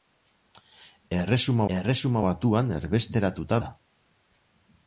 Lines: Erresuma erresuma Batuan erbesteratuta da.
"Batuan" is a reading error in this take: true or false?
false